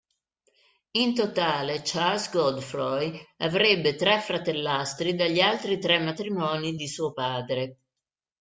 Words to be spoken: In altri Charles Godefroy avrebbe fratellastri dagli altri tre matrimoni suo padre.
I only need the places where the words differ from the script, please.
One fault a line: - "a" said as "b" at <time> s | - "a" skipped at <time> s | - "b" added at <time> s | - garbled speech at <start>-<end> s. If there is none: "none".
- "altri" said as "totale" at 1.1 s
- "tre" added at 3.9 s
- "di" added at 6.7 s